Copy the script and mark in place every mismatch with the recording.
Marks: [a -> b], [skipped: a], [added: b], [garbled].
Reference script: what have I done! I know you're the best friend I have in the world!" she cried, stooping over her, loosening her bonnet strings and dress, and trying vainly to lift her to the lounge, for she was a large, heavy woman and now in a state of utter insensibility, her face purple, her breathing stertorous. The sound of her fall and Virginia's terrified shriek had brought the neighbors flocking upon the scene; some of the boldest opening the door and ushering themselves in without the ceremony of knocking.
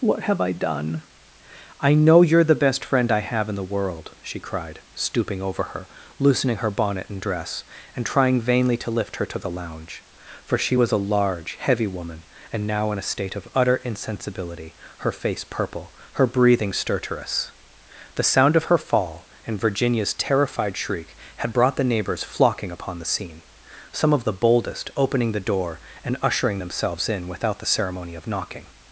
what have I done! I know you're the best friend I have in the world!" she cried, stooping over her, loosening her bonnet [skipped: strings] and dress, and trying vainly to lift her to the lounge, for she was a large, heavy woman and now in a state of utter insensibility, her face purple, her breathing stertorous. The sound of her fall and Virginia's terrified shriek had brought the neighbors flocking upon the scene; some of the boldest opening the door and ushering themselves in without the ceremony of knocking.